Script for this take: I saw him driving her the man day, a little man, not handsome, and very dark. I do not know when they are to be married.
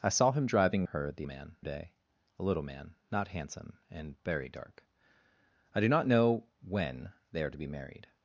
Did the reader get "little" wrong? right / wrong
right